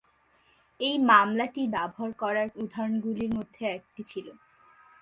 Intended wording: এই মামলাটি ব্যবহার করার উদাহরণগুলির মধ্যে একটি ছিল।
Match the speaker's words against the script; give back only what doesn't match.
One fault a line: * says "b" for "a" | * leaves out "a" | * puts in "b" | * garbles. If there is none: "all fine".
all fine